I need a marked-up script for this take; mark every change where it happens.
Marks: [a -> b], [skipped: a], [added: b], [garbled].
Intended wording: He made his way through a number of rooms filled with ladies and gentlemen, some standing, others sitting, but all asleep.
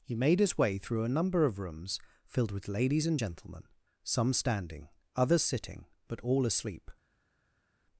He made his way through a number of rooms filled with ladies and gentlemen, some standing, others sitting, but all asleep.